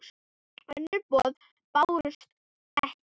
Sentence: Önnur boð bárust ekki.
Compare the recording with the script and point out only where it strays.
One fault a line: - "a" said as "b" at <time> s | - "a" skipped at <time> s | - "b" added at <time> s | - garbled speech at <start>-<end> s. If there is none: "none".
none